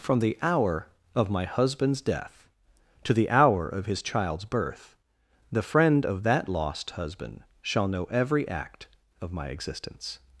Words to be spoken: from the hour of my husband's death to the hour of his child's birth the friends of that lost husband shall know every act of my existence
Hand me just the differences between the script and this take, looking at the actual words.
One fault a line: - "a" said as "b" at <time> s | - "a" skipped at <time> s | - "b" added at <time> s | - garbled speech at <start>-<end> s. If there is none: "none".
- "friends" said as "friend" at 5.6 s